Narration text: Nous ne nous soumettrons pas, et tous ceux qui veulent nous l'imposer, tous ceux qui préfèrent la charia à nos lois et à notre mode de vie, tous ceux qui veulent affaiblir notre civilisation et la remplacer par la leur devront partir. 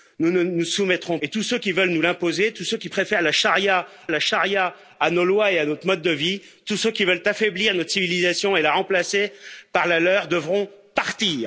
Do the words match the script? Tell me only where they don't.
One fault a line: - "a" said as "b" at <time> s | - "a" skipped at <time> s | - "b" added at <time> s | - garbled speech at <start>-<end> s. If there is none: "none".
- "pas" skipped at 1.2 s
- "la charia" added at 4.1 s